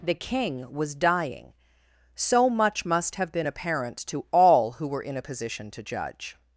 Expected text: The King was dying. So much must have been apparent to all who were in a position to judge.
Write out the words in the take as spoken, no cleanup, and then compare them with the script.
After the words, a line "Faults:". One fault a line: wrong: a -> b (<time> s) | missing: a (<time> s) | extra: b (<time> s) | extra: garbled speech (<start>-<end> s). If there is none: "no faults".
The King was dying. So much must have been apparent to all who were in a position to judge.
Faults:
no faults